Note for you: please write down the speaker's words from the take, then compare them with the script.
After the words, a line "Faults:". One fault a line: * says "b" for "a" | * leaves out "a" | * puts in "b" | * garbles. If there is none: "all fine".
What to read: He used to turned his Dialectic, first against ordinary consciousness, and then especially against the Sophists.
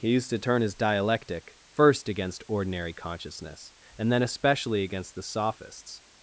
He used to turn his Dialectic, first against ordinary consciousness, and then especially against the Sophists.
Faults:
* says "turn" for "turned"